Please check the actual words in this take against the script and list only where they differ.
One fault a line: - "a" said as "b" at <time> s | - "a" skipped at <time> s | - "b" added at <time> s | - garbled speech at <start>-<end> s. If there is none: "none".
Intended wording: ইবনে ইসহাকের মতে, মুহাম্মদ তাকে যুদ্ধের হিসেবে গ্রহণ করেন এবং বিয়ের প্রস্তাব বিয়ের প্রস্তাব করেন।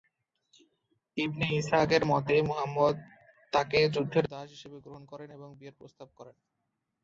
- "দাস" added at 4.3 s
- "বিয়ের প্রস্তাব" skipped at 6.1 s